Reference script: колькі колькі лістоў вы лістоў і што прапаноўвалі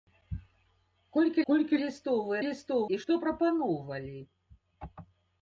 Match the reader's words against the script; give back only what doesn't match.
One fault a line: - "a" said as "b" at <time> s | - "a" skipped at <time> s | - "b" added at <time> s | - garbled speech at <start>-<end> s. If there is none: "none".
none